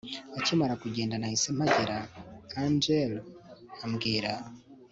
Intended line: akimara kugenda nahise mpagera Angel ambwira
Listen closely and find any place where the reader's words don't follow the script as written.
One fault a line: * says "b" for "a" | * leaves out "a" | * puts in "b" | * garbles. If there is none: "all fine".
all fine